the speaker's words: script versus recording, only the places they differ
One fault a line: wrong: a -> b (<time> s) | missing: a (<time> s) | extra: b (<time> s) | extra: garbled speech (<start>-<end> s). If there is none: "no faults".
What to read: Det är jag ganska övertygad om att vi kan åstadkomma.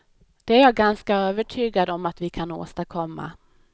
no faults